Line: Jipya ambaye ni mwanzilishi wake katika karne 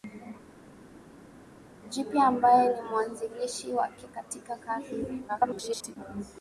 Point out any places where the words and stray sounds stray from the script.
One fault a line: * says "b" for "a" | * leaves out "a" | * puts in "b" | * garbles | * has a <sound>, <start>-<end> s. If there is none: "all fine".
* garbles